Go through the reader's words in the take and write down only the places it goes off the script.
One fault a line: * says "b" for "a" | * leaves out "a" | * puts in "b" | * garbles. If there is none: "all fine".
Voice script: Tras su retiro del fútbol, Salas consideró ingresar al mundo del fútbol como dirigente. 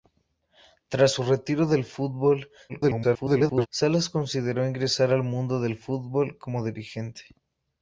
* garbles